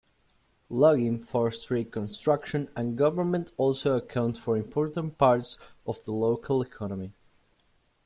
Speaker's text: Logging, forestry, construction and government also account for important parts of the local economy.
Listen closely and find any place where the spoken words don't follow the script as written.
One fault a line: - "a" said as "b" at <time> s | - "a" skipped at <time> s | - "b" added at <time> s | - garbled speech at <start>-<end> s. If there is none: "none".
none